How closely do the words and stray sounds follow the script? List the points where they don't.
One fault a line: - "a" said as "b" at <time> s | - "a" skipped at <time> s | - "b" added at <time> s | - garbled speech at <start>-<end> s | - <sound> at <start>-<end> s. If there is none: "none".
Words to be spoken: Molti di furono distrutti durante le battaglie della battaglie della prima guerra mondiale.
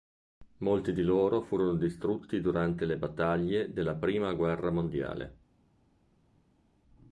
- "loro" added at 1.0 s
- "battaglie della" skipped at 4.0 s